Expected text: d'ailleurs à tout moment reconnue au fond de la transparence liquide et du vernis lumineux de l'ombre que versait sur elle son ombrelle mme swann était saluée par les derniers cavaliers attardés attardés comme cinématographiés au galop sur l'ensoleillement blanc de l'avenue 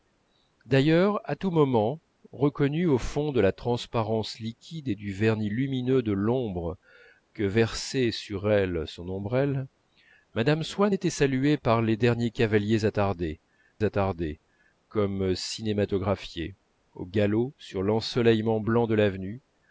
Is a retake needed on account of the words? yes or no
no